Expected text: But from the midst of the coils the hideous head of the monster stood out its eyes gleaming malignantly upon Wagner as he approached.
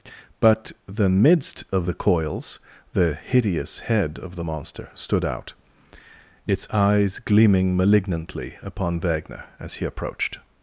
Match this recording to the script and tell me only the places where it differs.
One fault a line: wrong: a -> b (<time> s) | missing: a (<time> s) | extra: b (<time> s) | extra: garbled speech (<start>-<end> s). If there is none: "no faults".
missing: from (0.7 s)